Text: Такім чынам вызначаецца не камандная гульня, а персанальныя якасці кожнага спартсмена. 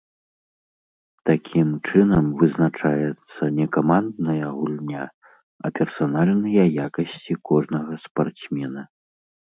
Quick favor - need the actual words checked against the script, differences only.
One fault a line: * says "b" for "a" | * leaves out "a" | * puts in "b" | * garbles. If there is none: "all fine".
all fine